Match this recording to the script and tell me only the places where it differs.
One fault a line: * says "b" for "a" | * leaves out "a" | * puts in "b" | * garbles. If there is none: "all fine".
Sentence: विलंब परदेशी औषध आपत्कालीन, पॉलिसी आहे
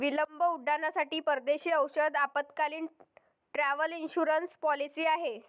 * puts in "उड्डाणांसाठी"
* puts in "ट्रॅव्हल इन्शुरन्स"